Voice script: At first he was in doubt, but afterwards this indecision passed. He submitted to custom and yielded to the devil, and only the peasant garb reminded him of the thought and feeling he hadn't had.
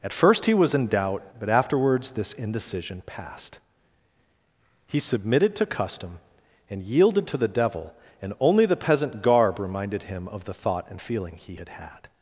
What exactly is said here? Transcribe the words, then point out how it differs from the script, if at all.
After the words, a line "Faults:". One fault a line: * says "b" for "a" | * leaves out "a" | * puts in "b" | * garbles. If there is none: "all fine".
At first he was in doubt, but afterwards this indecision passed. He submitted to custom and yielded to the devil, and only the peasant garb reminded him of the thought and feeling he had had.
Faults:
* says "had" for "hadn't"